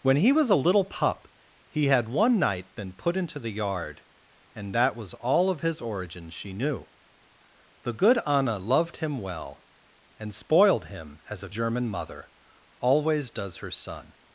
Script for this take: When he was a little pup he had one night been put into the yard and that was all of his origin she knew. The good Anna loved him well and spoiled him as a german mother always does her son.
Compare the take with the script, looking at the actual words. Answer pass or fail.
pass